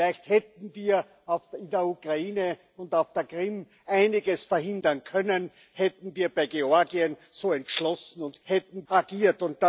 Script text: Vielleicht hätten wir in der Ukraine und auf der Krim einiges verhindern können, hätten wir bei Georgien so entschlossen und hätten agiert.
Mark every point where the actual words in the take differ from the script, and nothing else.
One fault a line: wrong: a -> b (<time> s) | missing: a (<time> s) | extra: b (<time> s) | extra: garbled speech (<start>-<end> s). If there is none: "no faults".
no faults